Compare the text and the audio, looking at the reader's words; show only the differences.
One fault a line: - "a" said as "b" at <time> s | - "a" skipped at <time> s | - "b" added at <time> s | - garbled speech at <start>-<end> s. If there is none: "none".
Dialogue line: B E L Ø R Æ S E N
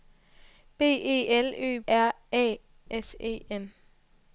none